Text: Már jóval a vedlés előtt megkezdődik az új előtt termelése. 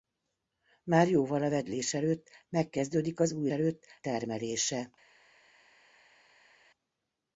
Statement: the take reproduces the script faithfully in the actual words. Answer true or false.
true